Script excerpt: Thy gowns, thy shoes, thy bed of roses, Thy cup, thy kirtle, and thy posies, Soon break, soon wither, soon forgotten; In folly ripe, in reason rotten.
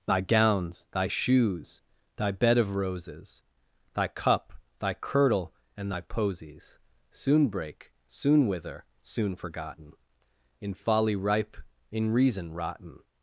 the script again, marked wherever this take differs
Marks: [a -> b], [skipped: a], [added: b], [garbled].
Thy gowns, thy shoes, thy bed of roses, Thy cup, thy kirtle, and thy posies, Soon break, soon wither, soon forgotten; In folly ripe, in reason rotten.